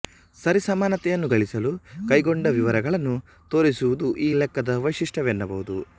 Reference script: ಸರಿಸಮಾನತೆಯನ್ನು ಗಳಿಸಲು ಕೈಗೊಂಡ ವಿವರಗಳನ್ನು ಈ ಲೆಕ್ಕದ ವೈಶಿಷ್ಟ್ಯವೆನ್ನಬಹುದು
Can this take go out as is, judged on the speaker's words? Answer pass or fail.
fail